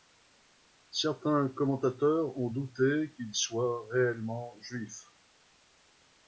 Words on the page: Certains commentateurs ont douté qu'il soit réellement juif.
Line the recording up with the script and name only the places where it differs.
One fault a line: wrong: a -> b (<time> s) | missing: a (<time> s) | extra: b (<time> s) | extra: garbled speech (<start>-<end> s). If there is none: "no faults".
no faults